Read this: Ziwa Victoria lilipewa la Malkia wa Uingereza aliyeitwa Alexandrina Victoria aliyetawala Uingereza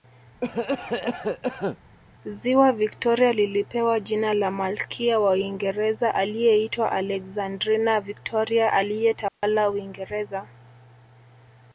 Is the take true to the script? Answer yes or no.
no